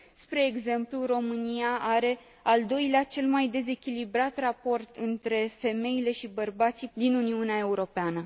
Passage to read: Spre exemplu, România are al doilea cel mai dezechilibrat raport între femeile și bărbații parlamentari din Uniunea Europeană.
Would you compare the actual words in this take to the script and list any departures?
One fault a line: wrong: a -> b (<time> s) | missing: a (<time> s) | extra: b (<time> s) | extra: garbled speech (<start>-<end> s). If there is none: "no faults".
missing: parlamentari (6.9 s)